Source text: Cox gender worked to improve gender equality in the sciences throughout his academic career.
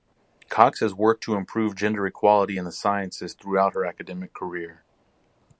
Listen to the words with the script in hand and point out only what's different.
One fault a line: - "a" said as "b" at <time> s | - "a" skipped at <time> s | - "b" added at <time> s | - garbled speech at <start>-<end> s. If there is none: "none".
- "gender" said as "has" at 0.8 s
- "his" said as "her" at 3.7 s